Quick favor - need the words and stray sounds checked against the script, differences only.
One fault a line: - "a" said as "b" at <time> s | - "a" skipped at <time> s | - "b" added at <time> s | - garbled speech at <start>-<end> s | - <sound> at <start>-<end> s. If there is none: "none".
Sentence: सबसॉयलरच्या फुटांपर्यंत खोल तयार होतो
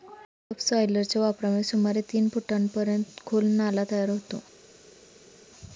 - "वापरामुळे सुमारे तीन" added at 1.2 s
- "नाला" added at 3.5 s